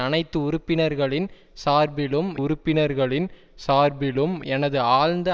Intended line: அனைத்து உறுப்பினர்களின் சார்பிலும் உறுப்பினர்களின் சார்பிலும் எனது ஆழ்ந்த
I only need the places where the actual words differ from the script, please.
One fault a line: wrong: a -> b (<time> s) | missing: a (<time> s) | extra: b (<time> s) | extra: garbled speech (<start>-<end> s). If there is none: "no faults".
no faults